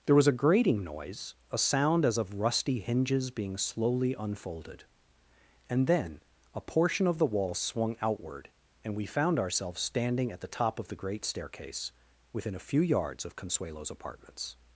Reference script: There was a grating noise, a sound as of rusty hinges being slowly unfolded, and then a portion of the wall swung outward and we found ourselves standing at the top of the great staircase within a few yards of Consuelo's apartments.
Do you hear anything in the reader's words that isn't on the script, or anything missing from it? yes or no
no